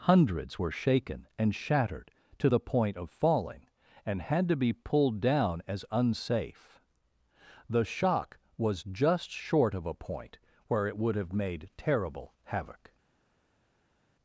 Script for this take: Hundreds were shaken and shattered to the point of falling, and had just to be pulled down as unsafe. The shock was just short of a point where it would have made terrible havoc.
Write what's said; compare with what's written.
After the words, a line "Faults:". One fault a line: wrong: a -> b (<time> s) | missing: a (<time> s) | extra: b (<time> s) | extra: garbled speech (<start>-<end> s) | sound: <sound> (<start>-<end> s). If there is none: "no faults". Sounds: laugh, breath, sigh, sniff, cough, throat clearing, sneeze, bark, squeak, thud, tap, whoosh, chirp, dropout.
Hundreds were shaken and shattered to the point of falling, and had to be pulled down as unsafe. The shock was just short of a point where it would have made terrible havoc.
Faults:
missing: just (4.5 s)